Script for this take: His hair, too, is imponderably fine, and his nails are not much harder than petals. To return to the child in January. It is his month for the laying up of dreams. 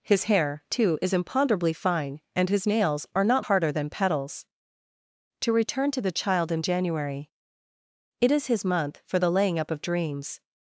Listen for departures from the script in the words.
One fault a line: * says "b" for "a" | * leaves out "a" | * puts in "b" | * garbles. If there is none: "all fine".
* leaves out "much"